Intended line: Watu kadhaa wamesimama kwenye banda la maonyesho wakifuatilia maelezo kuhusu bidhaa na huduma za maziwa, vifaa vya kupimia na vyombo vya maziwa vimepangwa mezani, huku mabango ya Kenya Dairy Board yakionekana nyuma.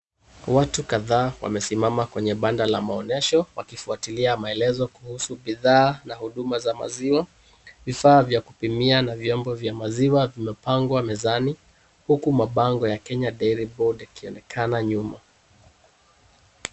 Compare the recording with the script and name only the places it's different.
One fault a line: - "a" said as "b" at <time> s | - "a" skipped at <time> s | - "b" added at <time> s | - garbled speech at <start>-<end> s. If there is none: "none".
none